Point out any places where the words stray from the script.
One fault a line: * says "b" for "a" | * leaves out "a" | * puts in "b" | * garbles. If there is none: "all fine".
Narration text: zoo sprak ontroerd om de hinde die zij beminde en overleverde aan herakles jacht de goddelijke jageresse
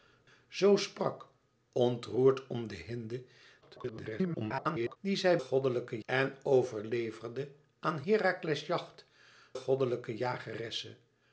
* garbles
* says "goddelijke" for "beminde"
* leaves out "de"